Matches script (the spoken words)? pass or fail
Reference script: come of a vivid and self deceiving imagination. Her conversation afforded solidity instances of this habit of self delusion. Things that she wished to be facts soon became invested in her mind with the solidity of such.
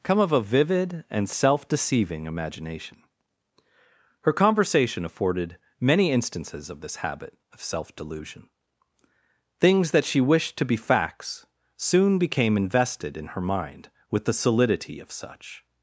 fail